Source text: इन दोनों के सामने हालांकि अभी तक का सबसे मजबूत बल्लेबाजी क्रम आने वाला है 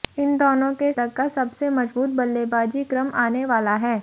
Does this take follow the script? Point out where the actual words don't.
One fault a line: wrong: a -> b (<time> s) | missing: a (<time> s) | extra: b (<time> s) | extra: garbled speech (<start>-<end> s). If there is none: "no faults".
missing: सामने हालांकि अभी (0.9 s)